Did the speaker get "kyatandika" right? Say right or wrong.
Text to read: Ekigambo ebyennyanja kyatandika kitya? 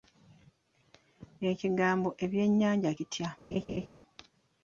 wrong